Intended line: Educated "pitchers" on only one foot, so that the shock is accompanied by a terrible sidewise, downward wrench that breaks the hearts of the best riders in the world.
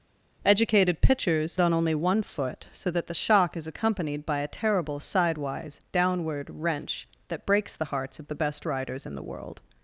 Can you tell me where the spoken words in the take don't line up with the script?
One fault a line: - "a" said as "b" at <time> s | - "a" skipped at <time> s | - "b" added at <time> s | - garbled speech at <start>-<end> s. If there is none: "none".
none